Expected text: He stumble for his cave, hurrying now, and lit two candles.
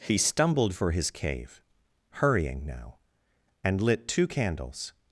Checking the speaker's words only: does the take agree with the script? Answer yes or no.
no